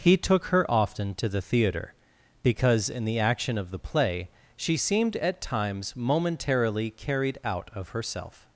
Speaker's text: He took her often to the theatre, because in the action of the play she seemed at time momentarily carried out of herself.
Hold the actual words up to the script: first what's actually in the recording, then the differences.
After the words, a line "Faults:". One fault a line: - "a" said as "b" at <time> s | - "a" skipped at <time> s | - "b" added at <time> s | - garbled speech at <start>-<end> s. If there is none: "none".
He took her often to the theatre, because in the action of the play she seemed at times momentarily carried out of herself.
Faults:
- "time" said as "times" at 5.4 s